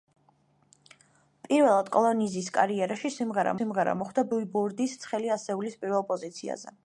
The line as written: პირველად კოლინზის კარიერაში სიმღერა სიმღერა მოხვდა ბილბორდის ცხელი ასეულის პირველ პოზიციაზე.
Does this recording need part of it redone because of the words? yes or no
no